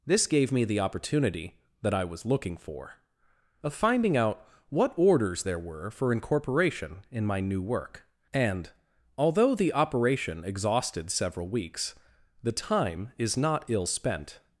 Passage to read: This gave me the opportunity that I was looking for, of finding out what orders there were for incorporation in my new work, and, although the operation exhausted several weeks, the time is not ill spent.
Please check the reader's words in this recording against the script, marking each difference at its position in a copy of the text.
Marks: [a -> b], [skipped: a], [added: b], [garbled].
This gave me the opportunity that I was looking for, of finding out what orders there were for incorporation in my new work, and, although the operation exhausted several weeks, the time is not ill spent.